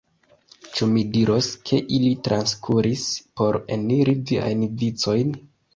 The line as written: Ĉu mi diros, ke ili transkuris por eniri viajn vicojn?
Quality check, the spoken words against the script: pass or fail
pass